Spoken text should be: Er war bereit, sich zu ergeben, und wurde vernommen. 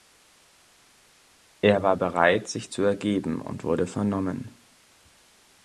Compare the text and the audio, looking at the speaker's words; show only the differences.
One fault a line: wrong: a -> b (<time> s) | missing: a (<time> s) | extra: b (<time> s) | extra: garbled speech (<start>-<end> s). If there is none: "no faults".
no faults